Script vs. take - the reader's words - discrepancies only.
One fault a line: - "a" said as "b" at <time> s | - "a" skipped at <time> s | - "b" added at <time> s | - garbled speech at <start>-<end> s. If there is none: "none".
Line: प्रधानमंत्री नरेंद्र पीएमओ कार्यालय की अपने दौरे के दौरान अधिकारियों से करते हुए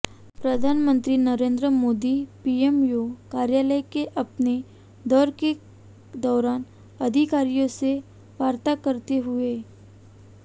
- "मोदी" added at 1.7 s
- "की" said as "के" at 3.9 s
- "वार्ता" added at 8.4 s